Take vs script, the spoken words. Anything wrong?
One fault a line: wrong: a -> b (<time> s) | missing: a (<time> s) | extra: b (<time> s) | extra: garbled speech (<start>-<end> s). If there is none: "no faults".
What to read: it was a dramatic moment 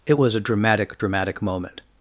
extra: dramatic (1.0 s)